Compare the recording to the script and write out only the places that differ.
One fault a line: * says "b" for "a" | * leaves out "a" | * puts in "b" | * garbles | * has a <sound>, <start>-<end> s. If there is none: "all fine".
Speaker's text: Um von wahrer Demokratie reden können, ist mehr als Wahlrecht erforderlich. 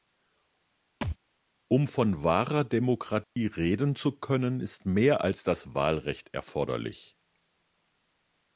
* has a thud, 1.0-1.2 s
* has a dropout, 3.2-3.4 s
* puts in "zu"
* puts in "das"